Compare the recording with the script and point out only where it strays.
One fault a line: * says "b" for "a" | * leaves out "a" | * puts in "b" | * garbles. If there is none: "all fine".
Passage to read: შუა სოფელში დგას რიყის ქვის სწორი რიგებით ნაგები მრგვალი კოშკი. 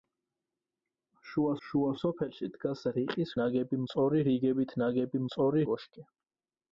* puts in "შუა"
* says "ნაგები" for "ქვის"
* says "სწორი" for "მრგვალი"